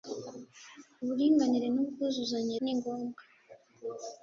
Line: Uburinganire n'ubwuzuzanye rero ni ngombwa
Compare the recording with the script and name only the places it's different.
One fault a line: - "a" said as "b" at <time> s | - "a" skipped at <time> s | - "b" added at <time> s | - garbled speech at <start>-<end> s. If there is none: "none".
- "rero" skipped at 2.5 s